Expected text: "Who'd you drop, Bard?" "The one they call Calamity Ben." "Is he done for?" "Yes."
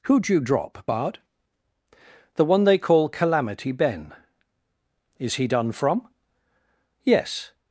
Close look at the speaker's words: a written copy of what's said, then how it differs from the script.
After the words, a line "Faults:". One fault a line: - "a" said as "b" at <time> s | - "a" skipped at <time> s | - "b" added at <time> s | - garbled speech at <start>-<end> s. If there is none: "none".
"Who'd you drop, Bard?" "The one they call Calamity Ben." "Is he done from?" "Yes."
Faults:
- "for" said as "from" at 5.7 s